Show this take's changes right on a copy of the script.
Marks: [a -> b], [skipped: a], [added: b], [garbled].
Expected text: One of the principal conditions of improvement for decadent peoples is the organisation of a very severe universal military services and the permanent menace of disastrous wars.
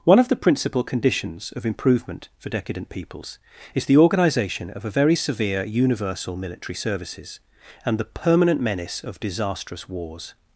One of the principal conditions of improvement for decadent peoples is the organisation of a very severe universal military services and the permanent menace of disastrous wars.